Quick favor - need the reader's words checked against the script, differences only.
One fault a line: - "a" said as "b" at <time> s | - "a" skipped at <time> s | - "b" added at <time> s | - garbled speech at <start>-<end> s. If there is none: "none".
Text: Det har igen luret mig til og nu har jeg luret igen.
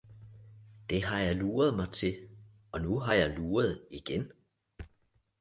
- "igen" said as "jeg" at 1.2 s